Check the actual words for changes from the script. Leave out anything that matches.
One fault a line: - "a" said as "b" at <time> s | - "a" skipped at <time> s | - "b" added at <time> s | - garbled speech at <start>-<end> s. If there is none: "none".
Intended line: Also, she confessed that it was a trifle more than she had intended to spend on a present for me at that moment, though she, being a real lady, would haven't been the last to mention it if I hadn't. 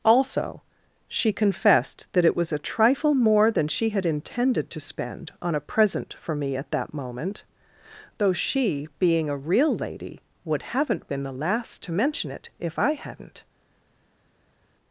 none